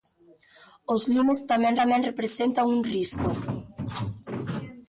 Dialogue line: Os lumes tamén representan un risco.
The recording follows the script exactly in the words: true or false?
false